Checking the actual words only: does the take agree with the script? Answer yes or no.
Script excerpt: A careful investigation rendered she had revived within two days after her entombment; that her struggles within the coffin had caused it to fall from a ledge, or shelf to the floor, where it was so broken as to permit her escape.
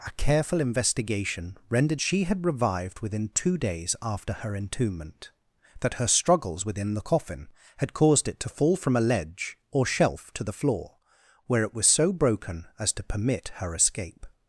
yes